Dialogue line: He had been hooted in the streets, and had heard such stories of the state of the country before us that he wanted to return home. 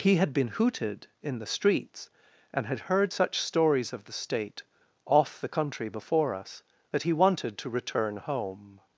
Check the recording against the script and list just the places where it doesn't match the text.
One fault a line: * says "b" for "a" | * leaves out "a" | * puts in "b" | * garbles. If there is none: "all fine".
* says "off" for "of"